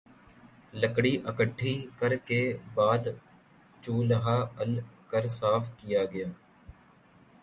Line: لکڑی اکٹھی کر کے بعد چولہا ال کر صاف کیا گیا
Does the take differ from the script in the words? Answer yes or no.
no